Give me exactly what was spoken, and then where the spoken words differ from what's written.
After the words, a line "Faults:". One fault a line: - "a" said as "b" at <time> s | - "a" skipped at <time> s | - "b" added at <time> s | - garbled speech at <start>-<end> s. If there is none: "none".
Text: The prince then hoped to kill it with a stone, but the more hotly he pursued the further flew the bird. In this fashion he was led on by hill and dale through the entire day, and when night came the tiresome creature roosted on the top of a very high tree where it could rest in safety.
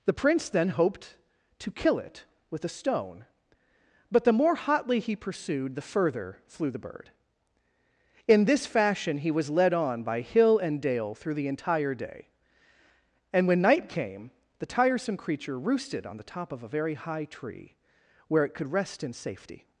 The prince then hoped to kill it with a stone, but the more hotly he pursued the further flew the bird. In this fashion he was led on by hill and dale through the entire day, and when night came the tiresome creature roosted on the top of a very high tree where it could rest in safety.
Faults:
none